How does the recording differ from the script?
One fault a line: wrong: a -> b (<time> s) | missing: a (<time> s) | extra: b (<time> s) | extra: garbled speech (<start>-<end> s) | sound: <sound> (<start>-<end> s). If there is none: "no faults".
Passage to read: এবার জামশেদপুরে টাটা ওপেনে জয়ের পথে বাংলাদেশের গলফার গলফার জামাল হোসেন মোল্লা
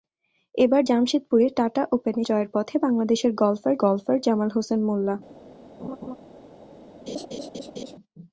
sound: laugh (5.8-6.2 s)
sound: laugh (7.1-8.0 s)